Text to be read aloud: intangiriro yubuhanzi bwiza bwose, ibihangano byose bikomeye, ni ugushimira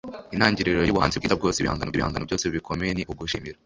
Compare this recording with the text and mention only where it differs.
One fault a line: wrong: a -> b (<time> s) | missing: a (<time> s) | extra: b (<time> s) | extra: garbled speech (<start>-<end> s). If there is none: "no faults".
extra: ibihangano (1.9 s)